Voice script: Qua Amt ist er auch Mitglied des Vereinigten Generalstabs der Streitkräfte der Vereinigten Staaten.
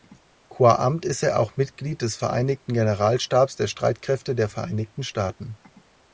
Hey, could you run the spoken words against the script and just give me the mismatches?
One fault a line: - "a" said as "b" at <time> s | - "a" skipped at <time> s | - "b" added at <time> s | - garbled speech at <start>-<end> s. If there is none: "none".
none